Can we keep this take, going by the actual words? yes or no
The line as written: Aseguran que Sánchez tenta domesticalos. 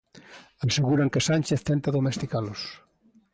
yes